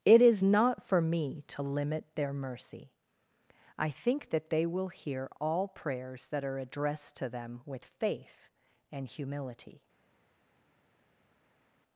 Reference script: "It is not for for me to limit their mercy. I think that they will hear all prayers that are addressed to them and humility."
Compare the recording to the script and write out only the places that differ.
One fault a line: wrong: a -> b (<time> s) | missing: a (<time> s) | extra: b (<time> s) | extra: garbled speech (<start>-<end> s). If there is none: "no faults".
missing: for (1.0 s)
extra: with faith (7.6 s)